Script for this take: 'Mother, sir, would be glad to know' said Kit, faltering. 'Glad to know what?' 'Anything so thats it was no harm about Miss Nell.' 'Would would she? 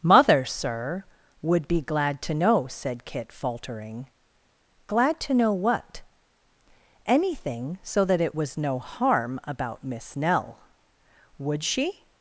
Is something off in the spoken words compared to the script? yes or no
yes